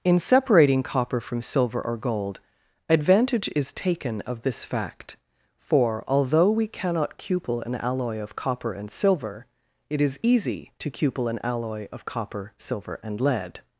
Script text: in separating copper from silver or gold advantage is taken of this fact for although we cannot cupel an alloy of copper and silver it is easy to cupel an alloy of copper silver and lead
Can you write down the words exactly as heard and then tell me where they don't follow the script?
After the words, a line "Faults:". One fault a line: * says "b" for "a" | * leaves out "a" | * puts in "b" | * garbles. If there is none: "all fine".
in separating copper from silver or gold advantage is taken of this fact for although we cannot cupel an alloy of copper and silver it is easy to cupel an alloy of copper silver and lead
Faults:
all fine